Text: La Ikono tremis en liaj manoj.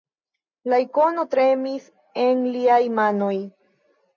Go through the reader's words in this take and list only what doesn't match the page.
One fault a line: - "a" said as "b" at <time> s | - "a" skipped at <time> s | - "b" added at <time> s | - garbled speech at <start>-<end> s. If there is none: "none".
none